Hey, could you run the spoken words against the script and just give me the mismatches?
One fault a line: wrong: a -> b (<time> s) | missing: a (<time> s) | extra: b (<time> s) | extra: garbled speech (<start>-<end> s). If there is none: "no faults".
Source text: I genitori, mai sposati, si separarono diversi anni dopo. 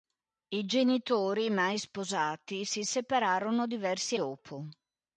missing: anni (4.2 s)